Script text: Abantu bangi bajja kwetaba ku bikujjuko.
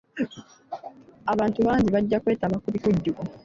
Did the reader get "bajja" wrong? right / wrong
right